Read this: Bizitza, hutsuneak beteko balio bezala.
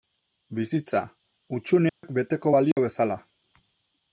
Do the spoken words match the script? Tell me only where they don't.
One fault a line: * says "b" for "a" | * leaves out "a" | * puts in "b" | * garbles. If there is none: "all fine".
all fine